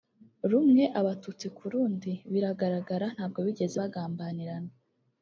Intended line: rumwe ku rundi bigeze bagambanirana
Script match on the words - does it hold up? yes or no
no